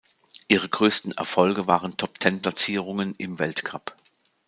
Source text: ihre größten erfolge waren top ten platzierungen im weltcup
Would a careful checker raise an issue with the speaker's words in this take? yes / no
no